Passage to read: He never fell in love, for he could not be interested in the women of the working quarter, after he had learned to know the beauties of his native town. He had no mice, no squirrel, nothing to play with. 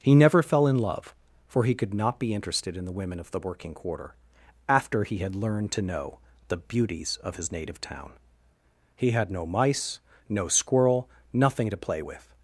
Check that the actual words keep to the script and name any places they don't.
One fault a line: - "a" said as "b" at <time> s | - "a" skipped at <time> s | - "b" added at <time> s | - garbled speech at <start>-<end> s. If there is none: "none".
none